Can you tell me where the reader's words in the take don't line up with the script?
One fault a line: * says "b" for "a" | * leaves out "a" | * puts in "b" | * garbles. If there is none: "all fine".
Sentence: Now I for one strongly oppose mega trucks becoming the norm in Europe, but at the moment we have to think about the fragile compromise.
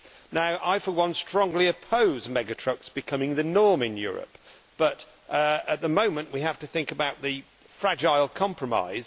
all fine